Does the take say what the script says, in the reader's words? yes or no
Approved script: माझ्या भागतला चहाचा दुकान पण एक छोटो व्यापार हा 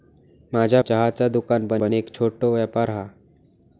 no